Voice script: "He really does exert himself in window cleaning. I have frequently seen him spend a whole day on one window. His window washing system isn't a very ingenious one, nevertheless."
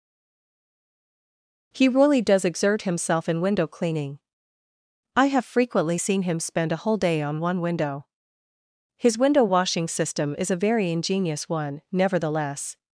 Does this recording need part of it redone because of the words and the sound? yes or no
yes